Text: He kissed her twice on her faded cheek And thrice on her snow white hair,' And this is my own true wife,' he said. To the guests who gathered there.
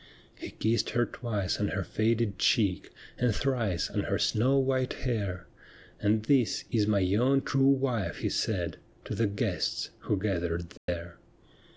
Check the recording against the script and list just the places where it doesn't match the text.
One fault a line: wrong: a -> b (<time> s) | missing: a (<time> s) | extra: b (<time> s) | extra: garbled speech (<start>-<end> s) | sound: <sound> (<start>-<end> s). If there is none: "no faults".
sound: dropout (10.8-10.9 s)